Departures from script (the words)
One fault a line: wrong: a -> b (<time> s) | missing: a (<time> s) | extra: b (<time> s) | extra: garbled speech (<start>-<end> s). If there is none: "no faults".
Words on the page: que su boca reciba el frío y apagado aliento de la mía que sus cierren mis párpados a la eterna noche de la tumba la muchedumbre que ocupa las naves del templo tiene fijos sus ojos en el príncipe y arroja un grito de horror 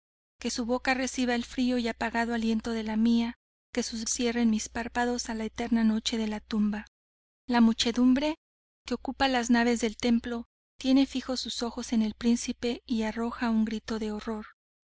no faults